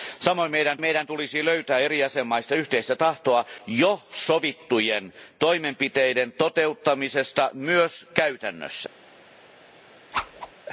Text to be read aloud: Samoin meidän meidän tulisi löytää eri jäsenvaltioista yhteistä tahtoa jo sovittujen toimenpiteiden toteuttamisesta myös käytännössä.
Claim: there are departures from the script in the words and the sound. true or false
true